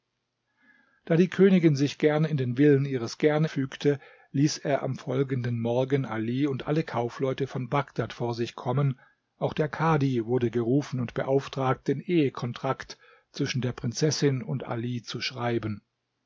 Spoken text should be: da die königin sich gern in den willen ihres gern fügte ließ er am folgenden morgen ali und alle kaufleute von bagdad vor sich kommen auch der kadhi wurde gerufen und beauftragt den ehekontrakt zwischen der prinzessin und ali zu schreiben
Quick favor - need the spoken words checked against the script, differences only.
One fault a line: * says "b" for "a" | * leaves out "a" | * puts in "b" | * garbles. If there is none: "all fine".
all fine